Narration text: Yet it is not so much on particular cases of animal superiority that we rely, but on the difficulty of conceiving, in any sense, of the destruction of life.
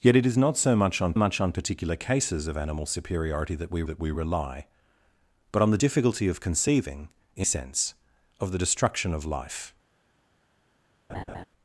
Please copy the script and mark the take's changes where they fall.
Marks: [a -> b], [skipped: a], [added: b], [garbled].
Yet it is not so much on [added: much on] particular cases of animal superiority that we [added: that we] rely, but on the difficulty of conceiving, in [skipped: any] sense, of the destruction of life.